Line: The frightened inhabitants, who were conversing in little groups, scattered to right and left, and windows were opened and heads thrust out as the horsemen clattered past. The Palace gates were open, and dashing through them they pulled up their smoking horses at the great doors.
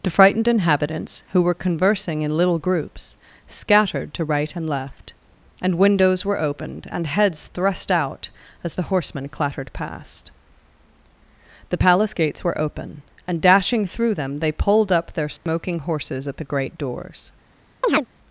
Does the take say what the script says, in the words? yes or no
yes